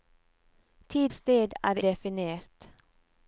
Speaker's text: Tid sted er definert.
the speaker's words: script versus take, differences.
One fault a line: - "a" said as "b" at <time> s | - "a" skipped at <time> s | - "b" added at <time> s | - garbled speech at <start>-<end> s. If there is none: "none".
none